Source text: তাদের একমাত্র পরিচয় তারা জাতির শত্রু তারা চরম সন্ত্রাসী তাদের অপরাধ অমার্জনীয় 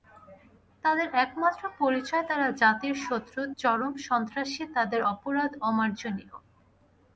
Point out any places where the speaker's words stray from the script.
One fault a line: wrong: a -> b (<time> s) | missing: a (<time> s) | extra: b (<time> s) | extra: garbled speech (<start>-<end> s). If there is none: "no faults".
missing: তারা (3.4 s)